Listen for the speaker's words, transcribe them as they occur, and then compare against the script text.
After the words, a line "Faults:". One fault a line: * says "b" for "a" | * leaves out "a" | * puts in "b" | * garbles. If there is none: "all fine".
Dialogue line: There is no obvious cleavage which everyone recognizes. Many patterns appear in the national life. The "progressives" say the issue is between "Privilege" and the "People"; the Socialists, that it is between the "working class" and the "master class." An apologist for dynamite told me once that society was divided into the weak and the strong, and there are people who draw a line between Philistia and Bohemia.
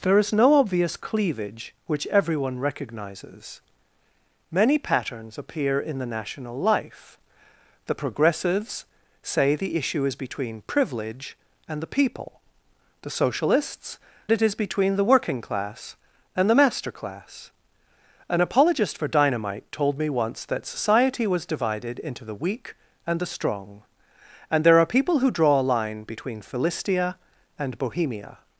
There is no obvious cleavage which everyone recognizes. Many patterns appear in the national life. The "progressives" say the issue is between "Privilege" and the "People"; the Socialists, it is between the "working class" and the "master class." An apologist for dynamite told me once that society was divided into the weak and the strong, and there are people who draw a line between Philistia and Bohemia.
Faults:
* leaves out "that"